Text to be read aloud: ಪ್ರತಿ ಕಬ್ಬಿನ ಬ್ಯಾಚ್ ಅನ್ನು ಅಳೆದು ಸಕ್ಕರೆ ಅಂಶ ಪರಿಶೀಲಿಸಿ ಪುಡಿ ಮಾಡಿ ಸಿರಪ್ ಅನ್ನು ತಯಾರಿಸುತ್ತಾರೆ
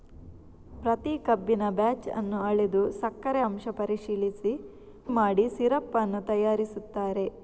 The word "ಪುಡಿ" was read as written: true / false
false